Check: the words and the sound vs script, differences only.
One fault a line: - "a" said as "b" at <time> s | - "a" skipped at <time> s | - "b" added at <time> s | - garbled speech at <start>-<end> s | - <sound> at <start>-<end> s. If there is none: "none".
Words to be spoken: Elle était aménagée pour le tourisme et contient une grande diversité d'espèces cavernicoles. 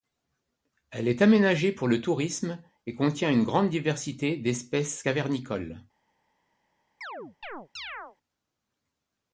- "était" said as "est" at 1.1 s
- chirp at 7.0-8.2 s